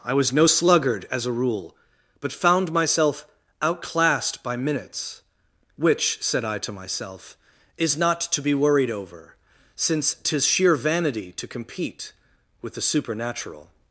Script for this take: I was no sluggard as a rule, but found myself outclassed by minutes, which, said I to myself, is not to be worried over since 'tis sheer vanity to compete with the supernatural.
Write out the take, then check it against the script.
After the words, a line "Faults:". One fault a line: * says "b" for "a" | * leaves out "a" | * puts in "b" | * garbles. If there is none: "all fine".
I was no sluggard as a rule, but found myself outclassed by minutes, which, said I to myself, is not to be worried over since 'tis sheer vanity to compete with the supernatural.
Faults:
all fine